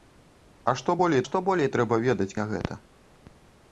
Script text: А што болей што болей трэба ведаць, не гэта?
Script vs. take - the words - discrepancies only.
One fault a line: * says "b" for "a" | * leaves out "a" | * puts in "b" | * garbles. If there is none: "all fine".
all fine